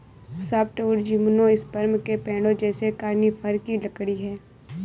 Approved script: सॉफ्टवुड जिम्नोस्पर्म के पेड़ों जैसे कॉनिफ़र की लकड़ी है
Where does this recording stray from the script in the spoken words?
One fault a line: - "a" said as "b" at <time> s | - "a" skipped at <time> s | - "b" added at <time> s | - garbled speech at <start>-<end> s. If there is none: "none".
none